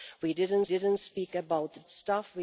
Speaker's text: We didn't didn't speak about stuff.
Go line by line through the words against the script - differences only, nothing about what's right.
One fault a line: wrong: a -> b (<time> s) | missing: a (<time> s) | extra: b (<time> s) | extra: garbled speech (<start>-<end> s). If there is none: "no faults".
no faults